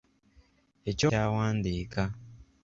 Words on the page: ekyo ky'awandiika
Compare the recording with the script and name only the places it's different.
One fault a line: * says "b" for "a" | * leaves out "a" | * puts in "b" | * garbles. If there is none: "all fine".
all fine